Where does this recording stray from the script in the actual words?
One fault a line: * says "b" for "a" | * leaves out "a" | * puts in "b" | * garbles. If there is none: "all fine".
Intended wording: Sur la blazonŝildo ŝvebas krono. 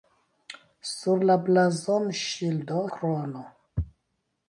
* leaves out "ŝvebas"